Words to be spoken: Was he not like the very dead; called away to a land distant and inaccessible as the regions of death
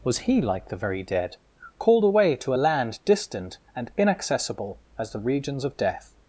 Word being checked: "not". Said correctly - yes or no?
no